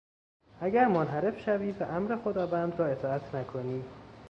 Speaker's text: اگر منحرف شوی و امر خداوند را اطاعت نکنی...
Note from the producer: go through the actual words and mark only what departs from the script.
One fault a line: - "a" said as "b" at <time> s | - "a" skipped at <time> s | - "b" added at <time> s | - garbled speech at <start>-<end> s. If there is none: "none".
none